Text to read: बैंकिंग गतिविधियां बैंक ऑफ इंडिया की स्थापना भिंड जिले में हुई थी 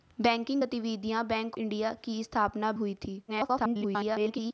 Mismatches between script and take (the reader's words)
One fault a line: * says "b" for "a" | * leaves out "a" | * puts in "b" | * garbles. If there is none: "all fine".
* leaves out "ऑफ"
* leaves out "भिंड जिले में"
* garbles